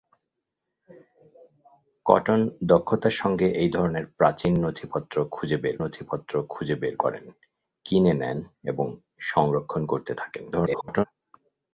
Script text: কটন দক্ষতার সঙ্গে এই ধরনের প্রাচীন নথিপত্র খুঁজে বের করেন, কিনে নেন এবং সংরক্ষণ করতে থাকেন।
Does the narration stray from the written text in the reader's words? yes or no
yes